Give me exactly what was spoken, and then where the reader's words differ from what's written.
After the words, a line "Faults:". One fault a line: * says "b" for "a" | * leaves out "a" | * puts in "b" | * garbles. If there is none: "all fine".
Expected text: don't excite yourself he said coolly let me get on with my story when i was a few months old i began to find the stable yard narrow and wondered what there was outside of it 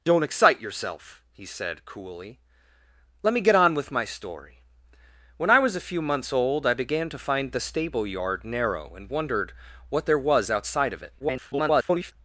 don't excite yourself he said coolly let me get on with my story when i was a few months old i began to find the stable yard narrow and wondered what there was outside of it [garbled]
Faults:
* garbles